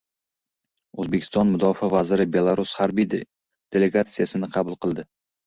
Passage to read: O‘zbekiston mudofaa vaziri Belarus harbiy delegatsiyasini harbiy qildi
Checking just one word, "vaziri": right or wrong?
right